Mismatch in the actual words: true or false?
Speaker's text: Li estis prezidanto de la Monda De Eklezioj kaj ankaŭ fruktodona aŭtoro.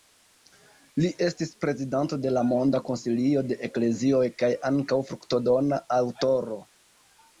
true